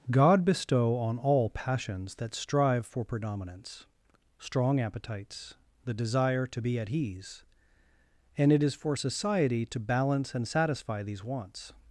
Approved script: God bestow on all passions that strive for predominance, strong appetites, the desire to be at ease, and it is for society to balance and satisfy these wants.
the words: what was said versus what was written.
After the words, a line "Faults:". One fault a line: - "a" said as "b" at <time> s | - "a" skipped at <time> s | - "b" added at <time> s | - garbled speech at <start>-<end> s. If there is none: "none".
God bestow on all passions that strive for predominance, strong appetites, the desire to be at ease, and it is for society to balance and satisfy these wants.
Faults:
none